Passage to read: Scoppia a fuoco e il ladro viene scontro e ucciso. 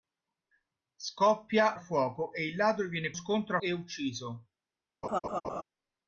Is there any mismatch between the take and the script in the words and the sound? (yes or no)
yes